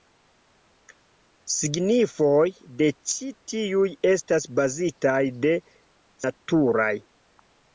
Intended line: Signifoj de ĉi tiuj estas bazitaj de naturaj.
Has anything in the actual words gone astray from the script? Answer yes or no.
no